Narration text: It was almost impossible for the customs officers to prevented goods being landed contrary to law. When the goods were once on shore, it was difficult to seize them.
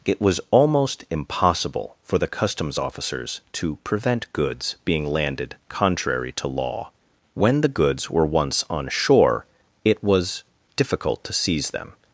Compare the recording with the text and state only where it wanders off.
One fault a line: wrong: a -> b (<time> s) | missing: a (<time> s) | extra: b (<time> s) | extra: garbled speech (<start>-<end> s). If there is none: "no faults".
wrong: prevented -> prevent (3.8 s)